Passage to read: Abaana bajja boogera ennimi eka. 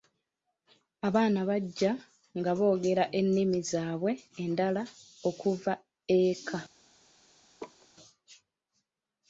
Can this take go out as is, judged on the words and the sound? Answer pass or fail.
fail